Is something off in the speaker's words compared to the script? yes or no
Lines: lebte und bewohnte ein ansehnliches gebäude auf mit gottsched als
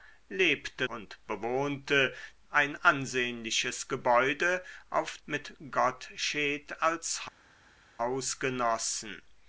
no